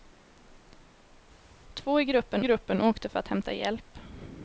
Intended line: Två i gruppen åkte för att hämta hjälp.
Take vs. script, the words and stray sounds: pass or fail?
fail